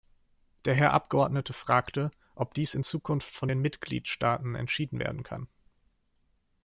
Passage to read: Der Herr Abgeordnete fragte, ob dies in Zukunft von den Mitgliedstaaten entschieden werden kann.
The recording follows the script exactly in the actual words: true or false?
true